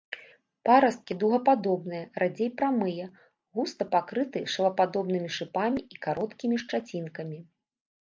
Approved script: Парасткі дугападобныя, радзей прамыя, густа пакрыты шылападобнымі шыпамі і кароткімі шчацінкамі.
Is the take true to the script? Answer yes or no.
yes